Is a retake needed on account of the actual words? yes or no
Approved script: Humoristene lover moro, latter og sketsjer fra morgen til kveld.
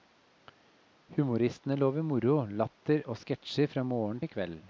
no